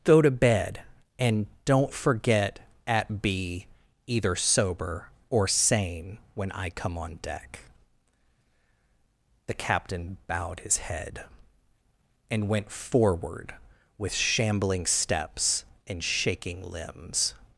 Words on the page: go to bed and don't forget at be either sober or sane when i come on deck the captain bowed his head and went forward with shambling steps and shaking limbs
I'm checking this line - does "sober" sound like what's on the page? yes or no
yes